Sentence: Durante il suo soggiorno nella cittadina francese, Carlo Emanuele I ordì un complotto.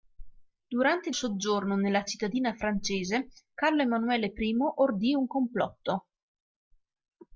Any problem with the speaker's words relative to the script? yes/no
yes